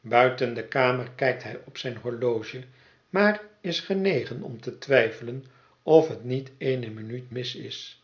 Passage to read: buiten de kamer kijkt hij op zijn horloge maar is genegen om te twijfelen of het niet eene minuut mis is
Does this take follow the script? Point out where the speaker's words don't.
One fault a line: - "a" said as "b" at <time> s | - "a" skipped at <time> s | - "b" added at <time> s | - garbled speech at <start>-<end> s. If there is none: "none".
none